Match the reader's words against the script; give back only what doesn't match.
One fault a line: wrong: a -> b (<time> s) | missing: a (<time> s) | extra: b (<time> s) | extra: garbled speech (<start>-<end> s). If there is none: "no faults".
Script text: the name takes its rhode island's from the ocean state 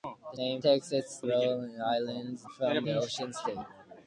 no faults